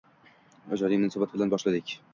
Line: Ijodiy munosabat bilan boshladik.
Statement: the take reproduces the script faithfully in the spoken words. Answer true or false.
true